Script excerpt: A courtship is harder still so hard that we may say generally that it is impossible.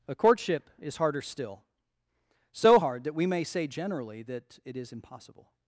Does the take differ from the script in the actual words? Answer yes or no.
no